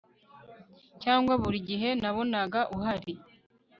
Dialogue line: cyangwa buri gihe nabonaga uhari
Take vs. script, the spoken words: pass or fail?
pass